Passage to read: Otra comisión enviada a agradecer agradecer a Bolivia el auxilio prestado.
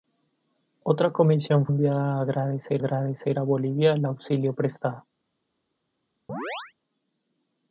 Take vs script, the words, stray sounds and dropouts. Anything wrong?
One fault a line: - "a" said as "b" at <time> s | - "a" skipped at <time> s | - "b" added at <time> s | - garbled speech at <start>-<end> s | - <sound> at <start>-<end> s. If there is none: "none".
- chirp at 6.3-6.7 s